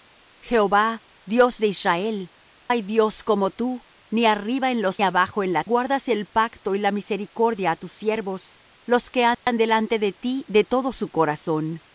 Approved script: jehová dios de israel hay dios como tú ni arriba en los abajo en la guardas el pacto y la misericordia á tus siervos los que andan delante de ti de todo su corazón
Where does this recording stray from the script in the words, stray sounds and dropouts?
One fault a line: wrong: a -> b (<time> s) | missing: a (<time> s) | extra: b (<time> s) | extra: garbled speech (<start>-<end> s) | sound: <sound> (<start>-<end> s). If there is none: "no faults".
sound: dropout (9.3-9.5 s)